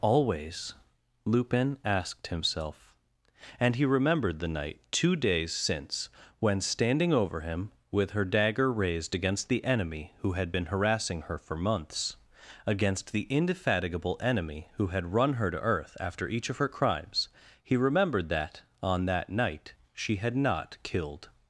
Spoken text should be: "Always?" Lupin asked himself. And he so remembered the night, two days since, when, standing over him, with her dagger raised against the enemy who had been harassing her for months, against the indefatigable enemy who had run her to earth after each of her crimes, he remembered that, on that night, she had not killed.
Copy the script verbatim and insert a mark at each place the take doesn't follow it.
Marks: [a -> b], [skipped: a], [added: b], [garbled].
"Always?" Lupin asked himself. And he [skipped: so] remembered the night, two days since, when, standing over him, with her dagger raised against the enemy who had been harassing her for months, against the indefatigable enemy who had run her to earth after each of her crimes, he remembered that, on that night, she had not killed.